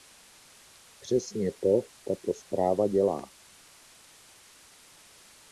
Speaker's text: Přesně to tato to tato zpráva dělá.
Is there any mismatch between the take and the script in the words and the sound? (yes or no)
yes